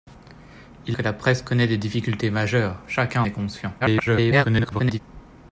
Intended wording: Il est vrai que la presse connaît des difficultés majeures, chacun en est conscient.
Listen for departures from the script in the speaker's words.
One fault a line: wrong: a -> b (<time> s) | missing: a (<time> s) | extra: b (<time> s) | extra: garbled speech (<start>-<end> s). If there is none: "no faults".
missing: est vrai (1.0 s)
missing: en (3.2 s)
extra: garbled speech (3.8-5.0 s)